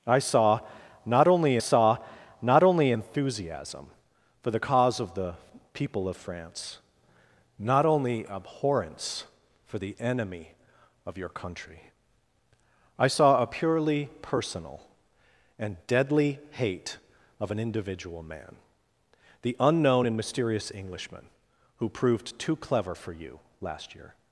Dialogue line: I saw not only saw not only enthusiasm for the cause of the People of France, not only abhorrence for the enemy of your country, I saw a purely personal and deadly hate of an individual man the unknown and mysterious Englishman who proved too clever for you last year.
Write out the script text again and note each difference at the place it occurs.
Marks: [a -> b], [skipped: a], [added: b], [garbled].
I saw not only saw not only enthusiasm for the cause of the People of France, not only abhorrence for the enemy of your country, I saw a purely personal and deadly hate of an individual man the unknown and mysterious Englishman who proved too clever for you last year.